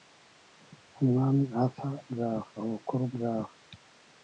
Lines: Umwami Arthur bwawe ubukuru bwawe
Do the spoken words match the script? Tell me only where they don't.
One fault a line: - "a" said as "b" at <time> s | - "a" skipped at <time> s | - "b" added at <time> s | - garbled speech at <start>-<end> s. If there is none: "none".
none